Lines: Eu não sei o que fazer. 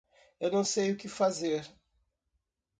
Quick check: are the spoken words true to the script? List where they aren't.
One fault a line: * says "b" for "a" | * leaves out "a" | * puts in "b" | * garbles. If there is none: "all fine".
all fine